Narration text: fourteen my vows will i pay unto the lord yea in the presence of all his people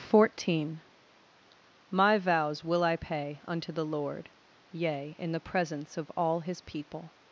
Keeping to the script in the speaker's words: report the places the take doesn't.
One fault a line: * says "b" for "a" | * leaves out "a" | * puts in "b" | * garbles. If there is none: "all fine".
all fine